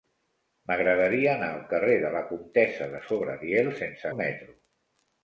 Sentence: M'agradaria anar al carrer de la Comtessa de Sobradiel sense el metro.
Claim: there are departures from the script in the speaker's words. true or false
false